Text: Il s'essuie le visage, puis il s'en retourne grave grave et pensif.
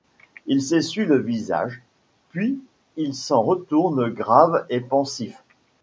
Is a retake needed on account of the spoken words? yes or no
yes